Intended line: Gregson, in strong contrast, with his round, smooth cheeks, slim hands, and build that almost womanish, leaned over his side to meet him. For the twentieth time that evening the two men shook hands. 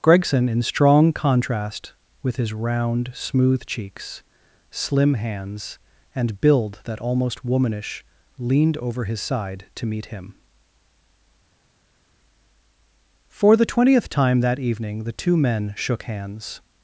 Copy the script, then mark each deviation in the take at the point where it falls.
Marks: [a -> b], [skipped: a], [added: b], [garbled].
Gregson, in strong contrast, with his round, smooth cheeks, slim hands, and build that almost womanish, leaned over his side to meet him. For the twentieth time that evening the two men shook hands.